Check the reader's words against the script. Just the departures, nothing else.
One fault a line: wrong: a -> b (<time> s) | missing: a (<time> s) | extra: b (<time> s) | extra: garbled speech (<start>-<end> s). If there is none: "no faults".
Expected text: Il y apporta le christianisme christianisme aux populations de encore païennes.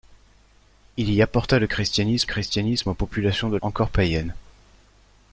no faults